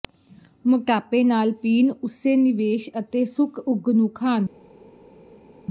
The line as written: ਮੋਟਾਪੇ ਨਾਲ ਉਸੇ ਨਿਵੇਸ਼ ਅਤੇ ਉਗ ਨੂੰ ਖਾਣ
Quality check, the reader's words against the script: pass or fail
fail